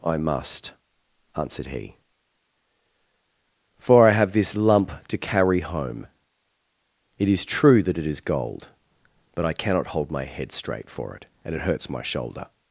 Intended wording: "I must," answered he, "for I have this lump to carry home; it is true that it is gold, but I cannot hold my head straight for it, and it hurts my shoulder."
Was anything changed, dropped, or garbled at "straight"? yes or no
no